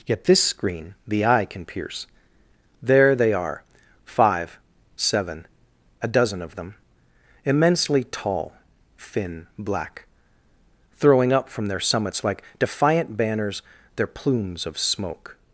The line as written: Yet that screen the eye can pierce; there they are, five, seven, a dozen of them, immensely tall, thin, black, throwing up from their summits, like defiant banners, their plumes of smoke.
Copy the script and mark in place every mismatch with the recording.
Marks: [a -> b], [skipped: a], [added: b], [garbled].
Yet [that -> this] screen the eye can pierce; there they are, five, seven, a dozen of them, immensely tall, thin, black, throwing up from their summits, like defiant banners, their plumes of smoke.